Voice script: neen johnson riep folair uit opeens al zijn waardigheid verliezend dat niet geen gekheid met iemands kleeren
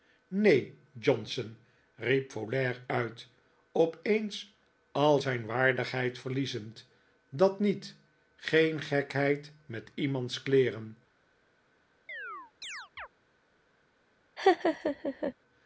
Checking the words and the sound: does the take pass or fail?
fail